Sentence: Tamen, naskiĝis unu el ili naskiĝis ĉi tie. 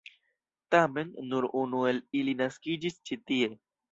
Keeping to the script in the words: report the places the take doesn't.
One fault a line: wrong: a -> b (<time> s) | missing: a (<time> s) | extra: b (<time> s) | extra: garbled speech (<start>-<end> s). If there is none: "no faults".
wrong: naskiĝis -> nur (1.3 s)